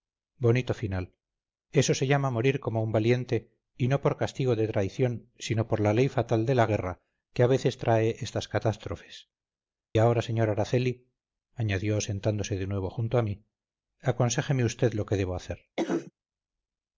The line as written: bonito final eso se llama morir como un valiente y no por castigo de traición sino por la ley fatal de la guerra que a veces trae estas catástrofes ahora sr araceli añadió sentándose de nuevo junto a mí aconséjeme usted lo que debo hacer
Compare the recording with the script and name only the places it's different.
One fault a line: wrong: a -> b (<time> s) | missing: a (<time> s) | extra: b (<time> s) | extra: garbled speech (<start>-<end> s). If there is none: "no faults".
no faults